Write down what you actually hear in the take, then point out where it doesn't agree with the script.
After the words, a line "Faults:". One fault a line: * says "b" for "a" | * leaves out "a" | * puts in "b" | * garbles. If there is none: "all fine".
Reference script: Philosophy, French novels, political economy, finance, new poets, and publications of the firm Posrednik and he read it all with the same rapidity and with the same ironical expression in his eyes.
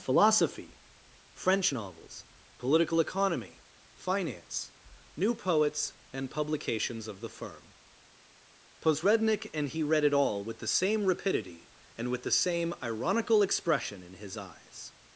Philosophy, French novels, political economy, finance, new poets, and publications of the firm Posrednik and he read it all with the same rapidity and with the same ironical expression in his eyes.
Faults:
all fine